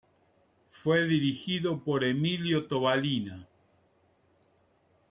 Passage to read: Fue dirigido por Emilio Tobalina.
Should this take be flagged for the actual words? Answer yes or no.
no